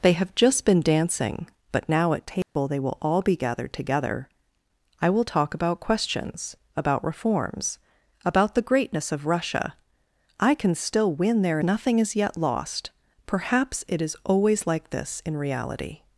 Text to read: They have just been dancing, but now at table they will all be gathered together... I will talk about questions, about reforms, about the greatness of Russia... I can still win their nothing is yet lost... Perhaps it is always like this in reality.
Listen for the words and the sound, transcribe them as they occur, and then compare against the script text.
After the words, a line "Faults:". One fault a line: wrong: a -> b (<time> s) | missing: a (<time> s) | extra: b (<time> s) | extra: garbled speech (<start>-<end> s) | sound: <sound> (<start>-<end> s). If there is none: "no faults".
They have just been dancing, but now at table they will all be gathered together... I will talk about questions, about reforms, about the greatness of Russia... I can still win their nothing is yet lost... Perhaps it is always like this in reality.
Faults:
sound: dropout (2.4-2.6 s)